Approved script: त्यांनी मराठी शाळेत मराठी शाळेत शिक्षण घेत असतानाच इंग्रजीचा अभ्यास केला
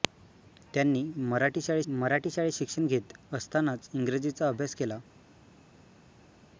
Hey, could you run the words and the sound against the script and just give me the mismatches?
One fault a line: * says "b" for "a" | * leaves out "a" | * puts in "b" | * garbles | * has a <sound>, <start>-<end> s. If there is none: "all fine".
all fine